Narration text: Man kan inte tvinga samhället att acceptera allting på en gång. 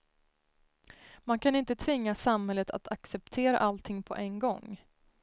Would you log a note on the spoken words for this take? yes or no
no